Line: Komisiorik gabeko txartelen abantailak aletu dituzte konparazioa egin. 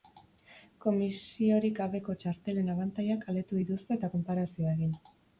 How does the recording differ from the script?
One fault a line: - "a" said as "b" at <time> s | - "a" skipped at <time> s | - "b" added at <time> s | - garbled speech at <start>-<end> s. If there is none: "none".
- "eta" added at 4.0 s